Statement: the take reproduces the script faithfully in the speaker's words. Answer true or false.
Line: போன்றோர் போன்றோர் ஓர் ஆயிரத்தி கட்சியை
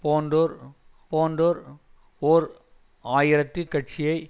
true